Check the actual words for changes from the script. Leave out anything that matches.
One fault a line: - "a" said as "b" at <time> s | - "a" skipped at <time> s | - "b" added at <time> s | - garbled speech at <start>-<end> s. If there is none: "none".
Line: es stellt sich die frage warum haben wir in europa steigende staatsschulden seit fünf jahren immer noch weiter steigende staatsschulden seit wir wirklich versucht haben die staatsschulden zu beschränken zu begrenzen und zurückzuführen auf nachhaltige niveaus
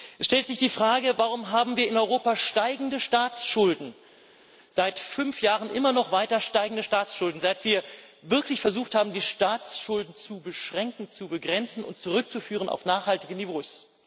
none